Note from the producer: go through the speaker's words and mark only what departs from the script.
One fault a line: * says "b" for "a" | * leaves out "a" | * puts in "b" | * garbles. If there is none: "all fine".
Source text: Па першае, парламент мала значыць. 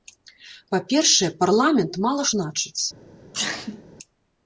all fine